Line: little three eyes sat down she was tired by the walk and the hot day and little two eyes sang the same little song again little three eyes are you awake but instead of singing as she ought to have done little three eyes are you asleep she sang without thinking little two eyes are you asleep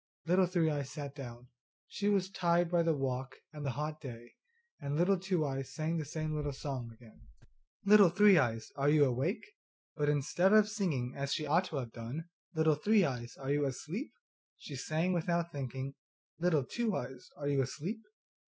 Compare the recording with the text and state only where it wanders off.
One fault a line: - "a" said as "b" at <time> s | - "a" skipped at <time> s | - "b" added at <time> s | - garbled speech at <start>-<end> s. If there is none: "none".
none